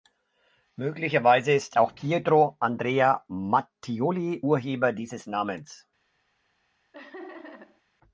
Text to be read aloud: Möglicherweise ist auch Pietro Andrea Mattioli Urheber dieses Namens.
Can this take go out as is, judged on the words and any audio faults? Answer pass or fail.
fail